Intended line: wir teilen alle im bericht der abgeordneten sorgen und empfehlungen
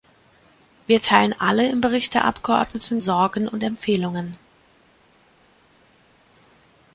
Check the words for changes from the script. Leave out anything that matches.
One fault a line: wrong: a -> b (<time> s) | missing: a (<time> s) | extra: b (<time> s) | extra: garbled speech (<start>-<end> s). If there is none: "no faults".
no faults